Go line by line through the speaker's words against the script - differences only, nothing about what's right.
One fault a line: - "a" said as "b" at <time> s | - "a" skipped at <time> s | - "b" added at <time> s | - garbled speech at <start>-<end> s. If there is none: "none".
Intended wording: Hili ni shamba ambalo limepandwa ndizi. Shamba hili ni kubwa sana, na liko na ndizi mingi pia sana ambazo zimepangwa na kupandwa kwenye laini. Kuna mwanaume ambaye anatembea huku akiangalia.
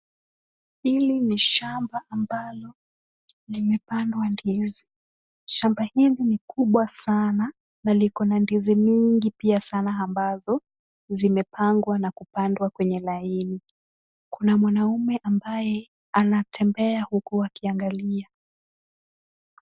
none